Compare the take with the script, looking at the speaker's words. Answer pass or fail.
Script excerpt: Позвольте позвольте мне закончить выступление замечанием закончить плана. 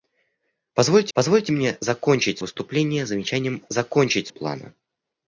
pass